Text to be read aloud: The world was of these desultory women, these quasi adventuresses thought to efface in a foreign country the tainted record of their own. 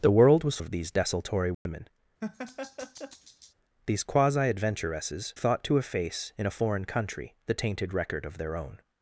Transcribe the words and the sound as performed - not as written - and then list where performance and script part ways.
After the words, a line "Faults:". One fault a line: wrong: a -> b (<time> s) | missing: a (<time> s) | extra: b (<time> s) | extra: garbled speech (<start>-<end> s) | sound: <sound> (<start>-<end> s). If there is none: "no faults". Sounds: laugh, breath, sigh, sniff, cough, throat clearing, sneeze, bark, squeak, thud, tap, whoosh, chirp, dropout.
The world was of these desultory women, these quasi adventuresses thought to efface in a foreign country the tainted record of their own.
Faults:
sound: dropout (1.5-1.7 s)
sound: laugh (2.2-3.5 s)